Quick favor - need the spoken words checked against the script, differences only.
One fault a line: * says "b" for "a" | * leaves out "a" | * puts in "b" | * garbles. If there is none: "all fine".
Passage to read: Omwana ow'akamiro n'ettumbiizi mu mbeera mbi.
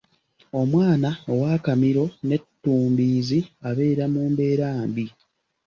* puts in "abeera"